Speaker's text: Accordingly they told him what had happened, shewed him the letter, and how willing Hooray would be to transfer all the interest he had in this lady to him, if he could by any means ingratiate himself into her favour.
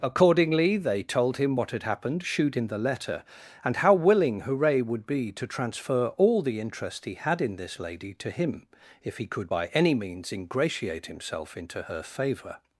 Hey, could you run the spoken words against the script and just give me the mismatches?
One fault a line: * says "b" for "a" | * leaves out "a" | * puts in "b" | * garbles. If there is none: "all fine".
all fine